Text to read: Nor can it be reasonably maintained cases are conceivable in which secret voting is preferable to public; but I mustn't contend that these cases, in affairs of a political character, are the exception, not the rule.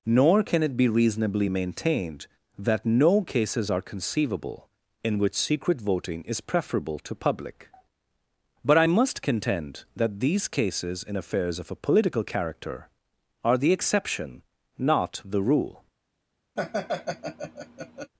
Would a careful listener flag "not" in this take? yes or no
no